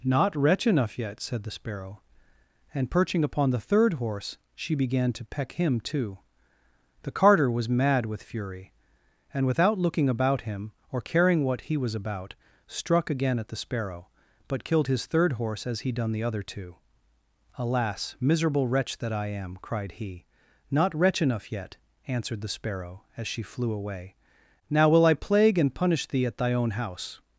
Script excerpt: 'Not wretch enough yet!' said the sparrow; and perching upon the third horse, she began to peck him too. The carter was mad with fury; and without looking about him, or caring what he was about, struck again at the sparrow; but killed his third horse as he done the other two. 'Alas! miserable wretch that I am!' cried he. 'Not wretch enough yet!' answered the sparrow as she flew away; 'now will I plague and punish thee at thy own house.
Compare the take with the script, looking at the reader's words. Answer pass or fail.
pass